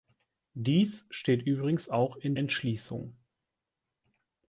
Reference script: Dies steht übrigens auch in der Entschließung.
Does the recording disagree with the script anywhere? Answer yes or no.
yes